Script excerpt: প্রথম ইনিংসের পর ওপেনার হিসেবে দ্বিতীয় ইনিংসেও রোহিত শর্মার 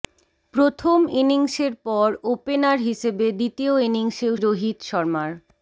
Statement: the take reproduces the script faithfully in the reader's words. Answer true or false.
true